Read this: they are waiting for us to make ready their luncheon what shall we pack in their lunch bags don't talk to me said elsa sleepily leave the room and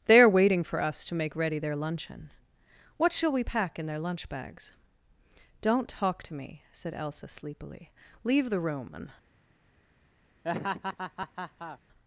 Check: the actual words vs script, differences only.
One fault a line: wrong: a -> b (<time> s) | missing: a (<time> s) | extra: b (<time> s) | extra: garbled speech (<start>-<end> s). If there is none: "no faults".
no faults